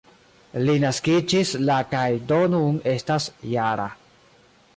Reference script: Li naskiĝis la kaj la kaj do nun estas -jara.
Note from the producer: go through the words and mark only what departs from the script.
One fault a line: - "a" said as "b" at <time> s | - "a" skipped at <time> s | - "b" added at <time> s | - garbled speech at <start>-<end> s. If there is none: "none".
- "la kaj" skipped at 2.1 s